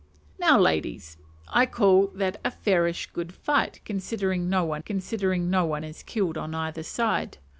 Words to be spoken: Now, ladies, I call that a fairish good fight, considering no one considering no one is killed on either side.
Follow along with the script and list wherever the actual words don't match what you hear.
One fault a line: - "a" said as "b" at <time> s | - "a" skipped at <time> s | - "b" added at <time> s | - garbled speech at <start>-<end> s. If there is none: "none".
none